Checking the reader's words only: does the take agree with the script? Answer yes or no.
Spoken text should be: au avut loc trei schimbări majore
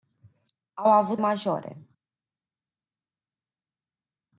no